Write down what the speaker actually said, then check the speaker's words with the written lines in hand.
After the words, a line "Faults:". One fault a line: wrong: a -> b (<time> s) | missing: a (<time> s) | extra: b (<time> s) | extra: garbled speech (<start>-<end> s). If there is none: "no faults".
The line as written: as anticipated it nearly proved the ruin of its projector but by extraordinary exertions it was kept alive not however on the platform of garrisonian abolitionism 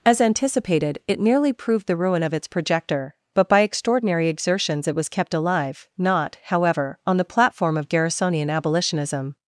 as anticipated it nearly proved the ruin of its projector but by extraordinary exertions it was kept alive not however on the platform of garrisonian abolitionism
Faults:
no faults